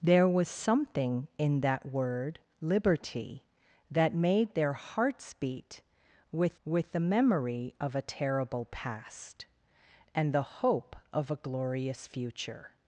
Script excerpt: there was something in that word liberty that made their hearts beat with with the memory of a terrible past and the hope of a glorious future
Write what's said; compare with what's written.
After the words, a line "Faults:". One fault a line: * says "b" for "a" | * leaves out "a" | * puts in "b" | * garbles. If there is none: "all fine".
there was something in that word liberty that made their hearts beat with with the memory of a terrible past and the hope of a glorious future
Faults:
all fine